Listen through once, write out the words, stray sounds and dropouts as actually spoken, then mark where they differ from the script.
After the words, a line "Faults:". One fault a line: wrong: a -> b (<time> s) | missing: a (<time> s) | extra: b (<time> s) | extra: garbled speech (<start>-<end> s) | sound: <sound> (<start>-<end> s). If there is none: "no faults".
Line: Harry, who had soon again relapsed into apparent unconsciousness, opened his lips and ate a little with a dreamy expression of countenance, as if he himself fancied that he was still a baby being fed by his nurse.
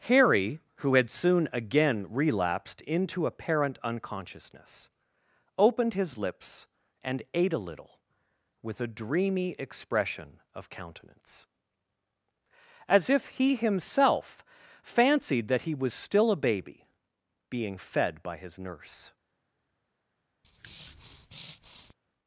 Harry, who had soon again relapsed into apparent unconsciousness, opened his lips and ate a little with a dreamy expression of countenance, as if he himself fancied that he was still a baby being fed by his nurse.
Faults:
sound: breath (20.4-21.9 s)